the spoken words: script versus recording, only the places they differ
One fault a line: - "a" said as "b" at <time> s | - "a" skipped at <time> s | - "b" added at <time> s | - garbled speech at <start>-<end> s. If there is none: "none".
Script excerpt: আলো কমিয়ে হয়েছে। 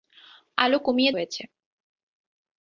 none